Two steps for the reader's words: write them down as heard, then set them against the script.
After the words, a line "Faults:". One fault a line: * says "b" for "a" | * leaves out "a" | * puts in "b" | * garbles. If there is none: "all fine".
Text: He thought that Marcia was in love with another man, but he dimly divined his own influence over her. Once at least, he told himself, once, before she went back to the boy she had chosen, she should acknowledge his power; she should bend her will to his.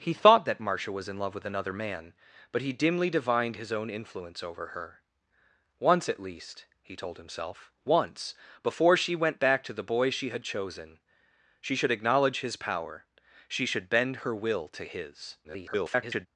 He thought that Marcia was in love with another man, but he dimly divined his own influence over her. Once at least, he told himself, once, before she went back to the boy she had chosen, she should acknowledge his power; she should bend her will to his. [garbled]
Faults:
* garbles